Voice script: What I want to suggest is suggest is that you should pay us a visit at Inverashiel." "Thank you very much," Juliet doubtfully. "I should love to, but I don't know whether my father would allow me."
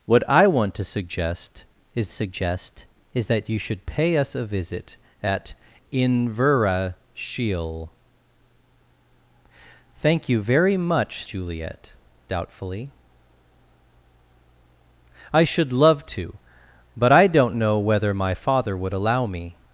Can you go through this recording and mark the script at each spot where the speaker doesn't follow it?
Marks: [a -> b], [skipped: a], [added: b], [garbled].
What I want to suggest is suggest is that you should pay us a visit at Inverashiel." "Thank you very much," Juliet doubtfully. "I should love to, but I don't know whether my father would allow me."